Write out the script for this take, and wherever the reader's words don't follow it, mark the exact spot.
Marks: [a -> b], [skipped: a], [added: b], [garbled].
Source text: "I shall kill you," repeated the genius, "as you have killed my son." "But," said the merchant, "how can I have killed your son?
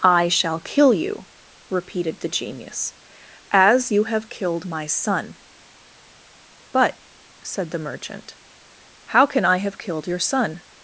"I shall kill you," repeated the genius, "as you have killed my son." "But," said the merchant, "how can I have killed your son?